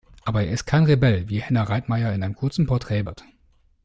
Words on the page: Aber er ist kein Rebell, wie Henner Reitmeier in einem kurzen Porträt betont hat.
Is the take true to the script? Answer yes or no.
no